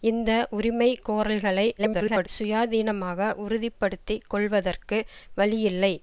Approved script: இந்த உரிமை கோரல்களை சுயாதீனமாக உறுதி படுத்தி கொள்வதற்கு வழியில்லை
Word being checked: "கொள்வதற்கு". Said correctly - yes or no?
yes